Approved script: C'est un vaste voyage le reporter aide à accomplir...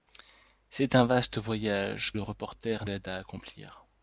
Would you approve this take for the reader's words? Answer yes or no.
yes